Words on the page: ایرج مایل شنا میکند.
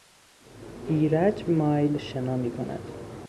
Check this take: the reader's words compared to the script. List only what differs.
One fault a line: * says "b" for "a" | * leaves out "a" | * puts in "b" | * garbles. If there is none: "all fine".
all fine